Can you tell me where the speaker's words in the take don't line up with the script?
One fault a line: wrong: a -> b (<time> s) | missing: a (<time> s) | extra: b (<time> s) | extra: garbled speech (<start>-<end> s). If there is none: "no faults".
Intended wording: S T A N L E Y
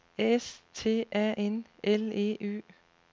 no faults